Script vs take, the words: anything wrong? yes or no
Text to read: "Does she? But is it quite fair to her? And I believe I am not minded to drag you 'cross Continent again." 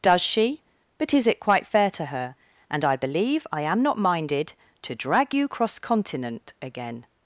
no